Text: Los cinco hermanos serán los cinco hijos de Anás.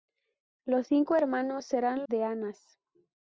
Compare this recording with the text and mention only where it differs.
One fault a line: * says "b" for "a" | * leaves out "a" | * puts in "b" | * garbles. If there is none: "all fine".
* leaves out "los cinco hijos"